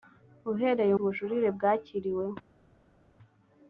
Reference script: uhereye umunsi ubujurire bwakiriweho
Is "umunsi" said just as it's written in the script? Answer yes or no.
no